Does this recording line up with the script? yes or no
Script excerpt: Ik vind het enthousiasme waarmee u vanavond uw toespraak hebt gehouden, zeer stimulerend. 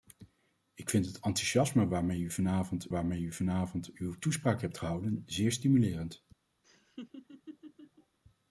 no